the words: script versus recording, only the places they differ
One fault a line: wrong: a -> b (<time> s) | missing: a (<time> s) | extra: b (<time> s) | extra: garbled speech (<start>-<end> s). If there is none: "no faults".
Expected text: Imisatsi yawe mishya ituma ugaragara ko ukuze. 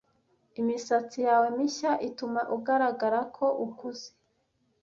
no faults